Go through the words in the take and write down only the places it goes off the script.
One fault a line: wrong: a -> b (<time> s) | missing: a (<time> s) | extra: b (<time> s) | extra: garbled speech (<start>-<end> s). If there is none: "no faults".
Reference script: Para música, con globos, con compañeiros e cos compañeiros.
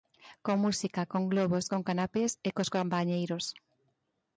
wrong: Para -> Con (0.5 s)
wrong: compañeiros -> canapés (1.9 s)